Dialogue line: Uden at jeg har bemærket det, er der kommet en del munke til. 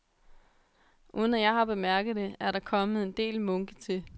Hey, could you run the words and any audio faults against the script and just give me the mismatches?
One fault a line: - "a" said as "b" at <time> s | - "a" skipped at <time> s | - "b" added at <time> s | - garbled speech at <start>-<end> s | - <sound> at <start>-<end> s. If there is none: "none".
none